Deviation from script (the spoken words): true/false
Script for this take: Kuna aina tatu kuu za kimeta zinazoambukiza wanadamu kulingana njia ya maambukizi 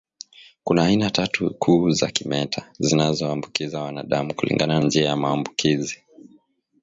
false